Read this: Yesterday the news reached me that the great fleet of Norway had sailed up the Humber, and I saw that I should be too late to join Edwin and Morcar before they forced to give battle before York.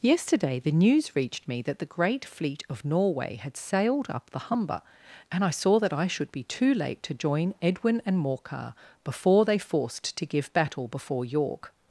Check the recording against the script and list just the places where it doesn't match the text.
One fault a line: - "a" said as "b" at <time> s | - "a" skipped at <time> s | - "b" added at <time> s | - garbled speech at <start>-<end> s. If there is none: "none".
none